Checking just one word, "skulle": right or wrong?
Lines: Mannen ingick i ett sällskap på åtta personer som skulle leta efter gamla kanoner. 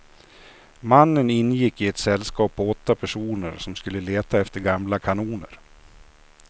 right